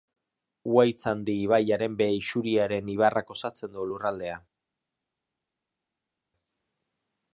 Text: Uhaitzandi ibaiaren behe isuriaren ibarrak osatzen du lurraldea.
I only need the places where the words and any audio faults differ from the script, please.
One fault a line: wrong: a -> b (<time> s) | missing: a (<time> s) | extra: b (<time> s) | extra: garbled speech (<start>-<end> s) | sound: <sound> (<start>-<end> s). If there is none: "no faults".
no faults